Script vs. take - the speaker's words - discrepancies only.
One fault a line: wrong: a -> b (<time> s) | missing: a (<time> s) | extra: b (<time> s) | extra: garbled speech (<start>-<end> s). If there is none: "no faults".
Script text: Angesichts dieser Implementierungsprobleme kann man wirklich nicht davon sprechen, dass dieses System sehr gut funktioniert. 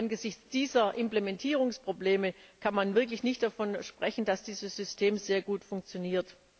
no faults